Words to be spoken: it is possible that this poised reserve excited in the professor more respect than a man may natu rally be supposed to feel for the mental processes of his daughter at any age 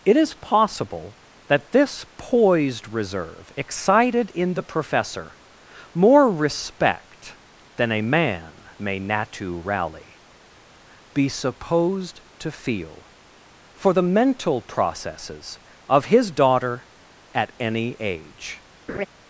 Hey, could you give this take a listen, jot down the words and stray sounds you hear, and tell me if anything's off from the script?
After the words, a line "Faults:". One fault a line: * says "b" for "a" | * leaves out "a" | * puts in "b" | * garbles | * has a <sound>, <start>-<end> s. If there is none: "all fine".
it is possible that this poised reserve excited in the professor more respect than a man may natu rally be supposed to feel for the mental processes of his daughter at any age
Faults:
* has a laugh, 18.9-19.1 s